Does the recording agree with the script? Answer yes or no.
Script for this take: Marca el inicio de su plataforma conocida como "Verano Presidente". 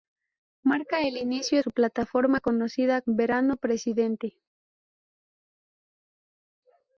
no